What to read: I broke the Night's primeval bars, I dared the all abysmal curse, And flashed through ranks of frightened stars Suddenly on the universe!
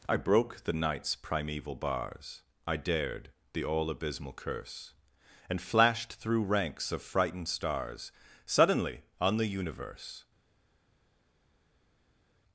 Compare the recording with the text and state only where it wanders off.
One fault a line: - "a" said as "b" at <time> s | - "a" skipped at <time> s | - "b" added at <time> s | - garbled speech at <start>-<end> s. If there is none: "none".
none